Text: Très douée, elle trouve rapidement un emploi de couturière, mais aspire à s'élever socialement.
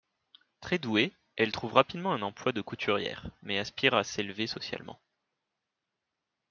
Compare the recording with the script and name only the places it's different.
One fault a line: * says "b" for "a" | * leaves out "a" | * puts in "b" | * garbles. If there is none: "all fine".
all fine